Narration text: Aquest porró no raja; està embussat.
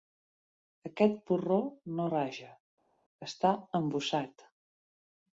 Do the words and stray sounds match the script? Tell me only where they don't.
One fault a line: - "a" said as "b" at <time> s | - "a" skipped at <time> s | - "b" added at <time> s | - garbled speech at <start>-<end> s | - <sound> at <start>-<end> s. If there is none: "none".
none